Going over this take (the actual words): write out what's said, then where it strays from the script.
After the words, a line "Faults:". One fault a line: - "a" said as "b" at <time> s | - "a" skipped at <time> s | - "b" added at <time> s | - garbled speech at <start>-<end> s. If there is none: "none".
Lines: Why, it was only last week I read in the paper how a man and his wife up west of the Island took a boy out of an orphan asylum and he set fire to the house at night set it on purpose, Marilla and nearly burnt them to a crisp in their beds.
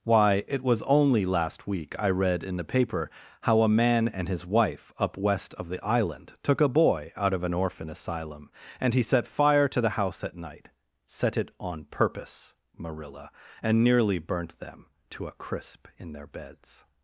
Why, it was only last week I read in the paper how a man and his wife up west of the Island took a boy out of an orphan asylum and he set fire to the house at night set it on purpose, Marilla and nearly burnt them to a crisp in their beds.
Faults:
none